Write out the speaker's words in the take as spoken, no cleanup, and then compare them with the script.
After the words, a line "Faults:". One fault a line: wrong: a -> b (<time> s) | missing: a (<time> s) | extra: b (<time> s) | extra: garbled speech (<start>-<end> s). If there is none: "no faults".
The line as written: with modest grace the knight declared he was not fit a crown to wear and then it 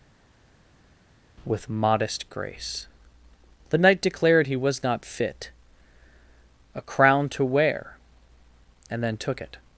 with modest grace the knight declared he was not fit a crown to wear and then took it
Faults:
extra: took (9.2 s)